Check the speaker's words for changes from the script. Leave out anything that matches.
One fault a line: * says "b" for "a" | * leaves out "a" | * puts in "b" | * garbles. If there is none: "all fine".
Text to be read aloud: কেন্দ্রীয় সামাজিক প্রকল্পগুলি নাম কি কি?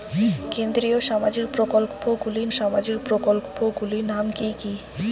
* puts in "সামাজিক প্রকল্পগুলি"